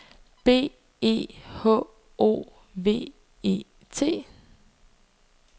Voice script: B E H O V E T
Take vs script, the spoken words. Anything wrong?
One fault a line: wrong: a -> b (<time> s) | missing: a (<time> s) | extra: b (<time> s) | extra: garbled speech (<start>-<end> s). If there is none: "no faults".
no faults